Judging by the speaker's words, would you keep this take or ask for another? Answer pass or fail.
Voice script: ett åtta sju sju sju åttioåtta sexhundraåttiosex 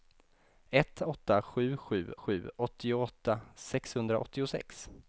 pass